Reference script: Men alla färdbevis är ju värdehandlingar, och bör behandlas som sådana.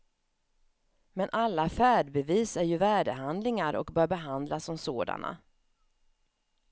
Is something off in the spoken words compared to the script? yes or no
no